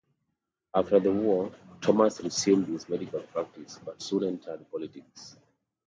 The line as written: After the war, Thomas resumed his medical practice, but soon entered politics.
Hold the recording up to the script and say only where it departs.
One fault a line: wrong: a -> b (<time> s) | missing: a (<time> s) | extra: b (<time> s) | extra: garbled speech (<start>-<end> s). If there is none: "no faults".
no faults